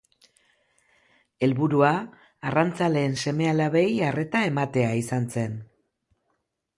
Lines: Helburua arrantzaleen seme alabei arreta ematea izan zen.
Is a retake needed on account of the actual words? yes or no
no